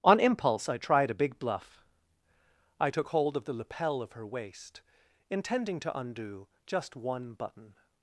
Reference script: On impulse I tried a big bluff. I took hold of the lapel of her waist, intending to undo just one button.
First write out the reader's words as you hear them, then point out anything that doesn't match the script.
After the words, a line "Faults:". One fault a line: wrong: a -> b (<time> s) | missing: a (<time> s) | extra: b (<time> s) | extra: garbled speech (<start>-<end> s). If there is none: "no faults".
On impulse I tried a big bluff. I took hold of the lapel of her waist, intending to undo just one button.
Faults:
no faults